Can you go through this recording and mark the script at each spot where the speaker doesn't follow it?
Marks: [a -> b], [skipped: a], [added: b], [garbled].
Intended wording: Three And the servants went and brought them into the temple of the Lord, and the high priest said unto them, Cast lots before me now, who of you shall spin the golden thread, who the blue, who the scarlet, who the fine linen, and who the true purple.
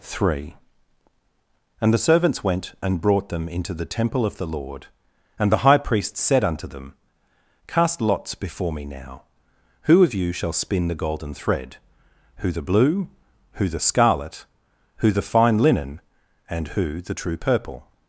Three And the servants went and brought them into the temple of the Lord, and the high priest said unto them, Cast lots before me now, who of you shall spin the golden thread, who the blue, who the scarlet, who the fine linen, and who the true purple.